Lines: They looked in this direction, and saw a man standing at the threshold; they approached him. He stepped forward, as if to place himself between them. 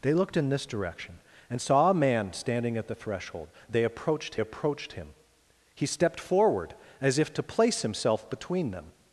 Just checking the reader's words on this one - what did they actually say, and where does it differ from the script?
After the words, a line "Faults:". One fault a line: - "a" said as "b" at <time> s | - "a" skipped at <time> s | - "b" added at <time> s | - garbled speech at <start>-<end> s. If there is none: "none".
They looked in this direction, and saw a man standing at the threshold; they approached approached him. He stepped forward, as if to place himself between them.
Faults:
- "approached" added at 4.4 s